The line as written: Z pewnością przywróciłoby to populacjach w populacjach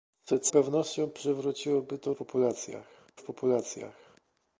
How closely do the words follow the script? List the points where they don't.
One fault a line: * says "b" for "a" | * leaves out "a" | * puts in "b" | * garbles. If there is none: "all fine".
all fine